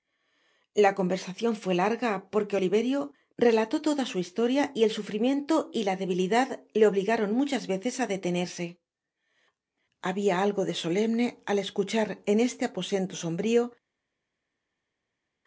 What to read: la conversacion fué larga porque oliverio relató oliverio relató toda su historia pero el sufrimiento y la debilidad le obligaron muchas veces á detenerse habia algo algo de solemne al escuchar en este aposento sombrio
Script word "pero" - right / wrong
wrong